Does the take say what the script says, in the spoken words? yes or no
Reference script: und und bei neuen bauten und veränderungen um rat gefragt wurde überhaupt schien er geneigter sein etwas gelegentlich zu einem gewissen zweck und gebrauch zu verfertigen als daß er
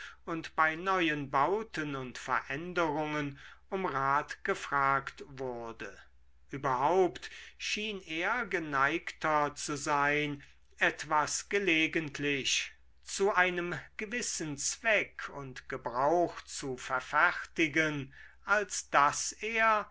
no